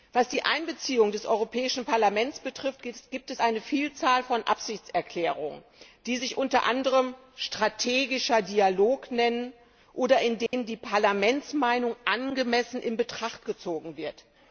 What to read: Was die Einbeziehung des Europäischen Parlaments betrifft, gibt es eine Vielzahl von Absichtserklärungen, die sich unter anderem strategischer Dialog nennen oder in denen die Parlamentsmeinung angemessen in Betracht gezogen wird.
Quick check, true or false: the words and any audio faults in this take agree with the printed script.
false